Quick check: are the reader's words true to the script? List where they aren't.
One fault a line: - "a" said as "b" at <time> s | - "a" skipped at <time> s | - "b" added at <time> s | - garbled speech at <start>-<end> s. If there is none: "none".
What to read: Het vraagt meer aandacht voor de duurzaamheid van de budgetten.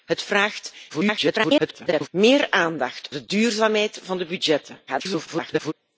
- garbled speech at 0.9-2.1 s
- "voor" skipped at 3.1 s
- garbled speech at 4.9-5.7 s